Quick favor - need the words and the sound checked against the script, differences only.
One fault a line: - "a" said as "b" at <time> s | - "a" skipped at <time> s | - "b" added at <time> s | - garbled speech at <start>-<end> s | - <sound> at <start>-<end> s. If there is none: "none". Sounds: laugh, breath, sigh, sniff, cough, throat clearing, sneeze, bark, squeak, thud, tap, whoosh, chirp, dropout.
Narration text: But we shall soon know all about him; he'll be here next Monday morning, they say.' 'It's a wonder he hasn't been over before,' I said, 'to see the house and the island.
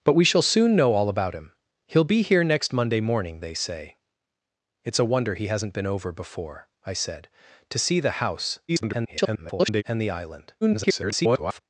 - garbled speech at 8.7-9.8 s
- garbled speech at 10.6-11.6 s